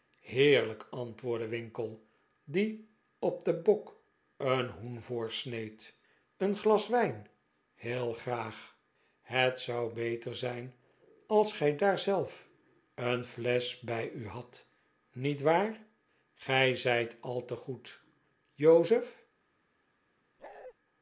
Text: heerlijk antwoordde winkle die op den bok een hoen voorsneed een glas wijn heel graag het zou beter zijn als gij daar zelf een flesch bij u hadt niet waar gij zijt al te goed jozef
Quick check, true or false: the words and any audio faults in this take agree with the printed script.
false